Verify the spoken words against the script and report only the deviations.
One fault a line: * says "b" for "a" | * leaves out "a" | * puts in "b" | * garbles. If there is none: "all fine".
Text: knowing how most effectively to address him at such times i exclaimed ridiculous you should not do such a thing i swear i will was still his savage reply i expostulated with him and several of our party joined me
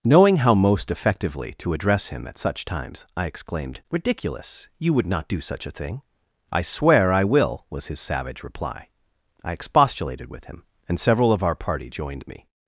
* says "would" for "should"
* leaves out "still"